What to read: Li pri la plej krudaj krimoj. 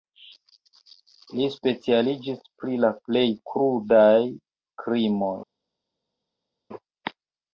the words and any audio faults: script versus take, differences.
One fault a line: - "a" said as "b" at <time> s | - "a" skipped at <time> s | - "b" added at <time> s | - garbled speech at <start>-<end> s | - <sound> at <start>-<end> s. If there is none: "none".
- "specialiĝis" added at 1.6 s